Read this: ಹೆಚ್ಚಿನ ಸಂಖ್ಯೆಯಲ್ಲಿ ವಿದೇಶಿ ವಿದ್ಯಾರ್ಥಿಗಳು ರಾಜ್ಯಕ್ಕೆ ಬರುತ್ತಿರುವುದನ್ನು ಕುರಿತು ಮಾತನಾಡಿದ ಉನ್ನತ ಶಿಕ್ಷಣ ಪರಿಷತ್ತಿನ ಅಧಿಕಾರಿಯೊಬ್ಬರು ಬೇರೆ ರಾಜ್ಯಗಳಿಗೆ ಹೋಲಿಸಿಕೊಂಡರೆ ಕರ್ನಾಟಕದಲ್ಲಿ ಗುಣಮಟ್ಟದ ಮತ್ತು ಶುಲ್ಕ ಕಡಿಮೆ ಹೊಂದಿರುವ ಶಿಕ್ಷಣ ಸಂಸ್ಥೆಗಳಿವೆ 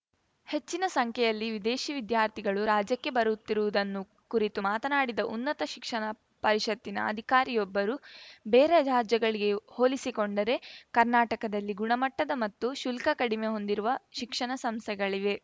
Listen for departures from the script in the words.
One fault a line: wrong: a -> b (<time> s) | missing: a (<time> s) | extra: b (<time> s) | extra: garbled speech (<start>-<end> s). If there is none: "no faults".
no faults